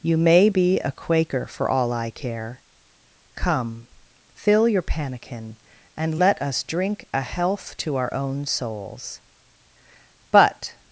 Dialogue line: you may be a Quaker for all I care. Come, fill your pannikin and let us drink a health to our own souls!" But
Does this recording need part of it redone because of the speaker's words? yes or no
no